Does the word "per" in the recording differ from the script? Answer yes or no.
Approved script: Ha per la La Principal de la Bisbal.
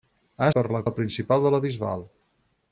no